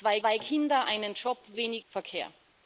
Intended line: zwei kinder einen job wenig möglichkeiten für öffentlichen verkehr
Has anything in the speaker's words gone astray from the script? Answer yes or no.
yes